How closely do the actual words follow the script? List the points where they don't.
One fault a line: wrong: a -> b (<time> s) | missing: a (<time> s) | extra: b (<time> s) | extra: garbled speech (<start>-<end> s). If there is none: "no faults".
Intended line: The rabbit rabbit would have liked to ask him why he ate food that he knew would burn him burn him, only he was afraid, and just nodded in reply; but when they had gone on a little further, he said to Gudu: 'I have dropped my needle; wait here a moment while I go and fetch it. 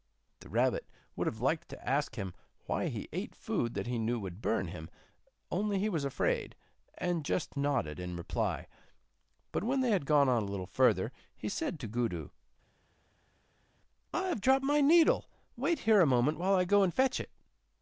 missing: rabbit (0.9 s)
missing: burn him (4.9 s)